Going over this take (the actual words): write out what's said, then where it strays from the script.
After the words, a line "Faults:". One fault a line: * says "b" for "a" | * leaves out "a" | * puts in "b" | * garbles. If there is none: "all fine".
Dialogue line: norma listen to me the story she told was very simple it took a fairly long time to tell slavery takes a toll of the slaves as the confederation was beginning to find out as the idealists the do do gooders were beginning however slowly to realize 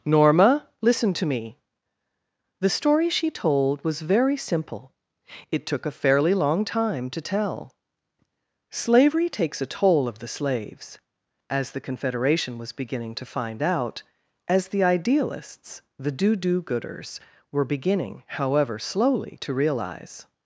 norma listen to me the story she told was very simple it took a fairly long time to tell slavery takes a toll of the slaves as the confederation was beginning to find out as the idealists the do do gooders were beginning however slowly to realize
Faults:
all fine